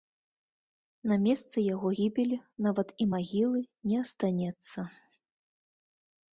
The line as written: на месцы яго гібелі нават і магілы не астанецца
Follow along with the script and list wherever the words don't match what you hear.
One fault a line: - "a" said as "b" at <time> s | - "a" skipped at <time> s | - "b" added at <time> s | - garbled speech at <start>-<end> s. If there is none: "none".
none